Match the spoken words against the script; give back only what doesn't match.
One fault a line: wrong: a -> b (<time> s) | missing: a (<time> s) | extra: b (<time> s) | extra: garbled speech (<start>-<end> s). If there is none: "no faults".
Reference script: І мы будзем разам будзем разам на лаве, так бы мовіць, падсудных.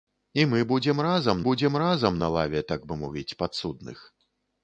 no faults